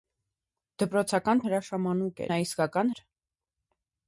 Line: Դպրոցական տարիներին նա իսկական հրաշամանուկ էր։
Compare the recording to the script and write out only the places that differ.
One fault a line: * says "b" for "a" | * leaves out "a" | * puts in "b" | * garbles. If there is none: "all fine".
* says "հրաշամանուկ" for "տարիներին"
* leaves out "հրաշամանուկ"